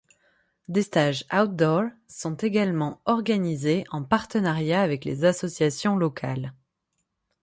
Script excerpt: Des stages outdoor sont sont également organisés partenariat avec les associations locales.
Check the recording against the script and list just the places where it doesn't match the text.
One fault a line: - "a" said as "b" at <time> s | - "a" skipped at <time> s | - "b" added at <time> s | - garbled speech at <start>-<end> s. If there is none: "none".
- "sont" skipped at 2.4 s
- "en" added at 3.9 s